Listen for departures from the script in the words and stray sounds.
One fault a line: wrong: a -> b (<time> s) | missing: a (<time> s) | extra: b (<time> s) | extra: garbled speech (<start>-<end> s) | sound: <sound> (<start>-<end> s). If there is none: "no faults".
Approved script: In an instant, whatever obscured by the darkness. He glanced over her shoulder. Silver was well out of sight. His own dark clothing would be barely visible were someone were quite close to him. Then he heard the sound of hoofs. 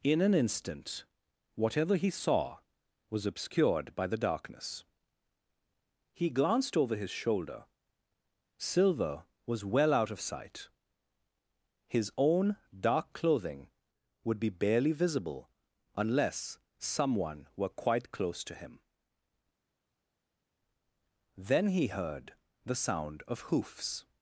extra: he saw was (1.9 s)
wrong: her -> his (7.0 s)
wrong: were -> unless (15.9 s)